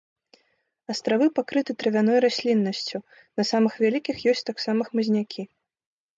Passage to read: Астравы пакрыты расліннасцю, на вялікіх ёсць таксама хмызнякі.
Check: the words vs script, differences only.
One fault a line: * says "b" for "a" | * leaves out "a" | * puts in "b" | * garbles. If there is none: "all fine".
* puts in "травяной"
* puts in "самых"